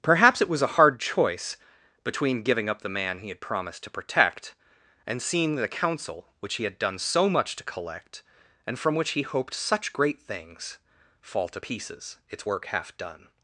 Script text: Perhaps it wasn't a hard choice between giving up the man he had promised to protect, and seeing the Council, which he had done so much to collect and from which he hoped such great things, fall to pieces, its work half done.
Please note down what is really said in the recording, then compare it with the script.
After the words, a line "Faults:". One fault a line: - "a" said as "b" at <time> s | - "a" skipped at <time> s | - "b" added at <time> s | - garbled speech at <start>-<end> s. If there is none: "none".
Perhaps it was a hard choice between giving up the man he had promised to protect, and seeing the Council, which he had done so much to collect and from which he hoped such great things, fall to pieces, its work half done.
Faults:
- "wasn't" said as "was" at 0.5 s